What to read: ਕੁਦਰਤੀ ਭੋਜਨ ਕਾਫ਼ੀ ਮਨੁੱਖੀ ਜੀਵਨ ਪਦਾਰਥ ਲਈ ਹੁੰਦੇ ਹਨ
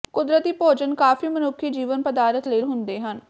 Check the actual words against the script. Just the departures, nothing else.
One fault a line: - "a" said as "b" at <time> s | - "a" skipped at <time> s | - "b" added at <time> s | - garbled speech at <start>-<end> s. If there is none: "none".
none